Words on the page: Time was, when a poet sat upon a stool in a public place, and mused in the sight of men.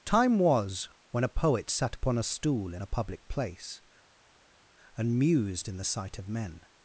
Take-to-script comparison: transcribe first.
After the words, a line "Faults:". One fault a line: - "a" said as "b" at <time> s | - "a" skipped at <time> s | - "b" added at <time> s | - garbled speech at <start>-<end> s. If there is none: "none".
Time was, when a poet sat upon a stool in a public place, and mused in the sight of men.
Faults:
none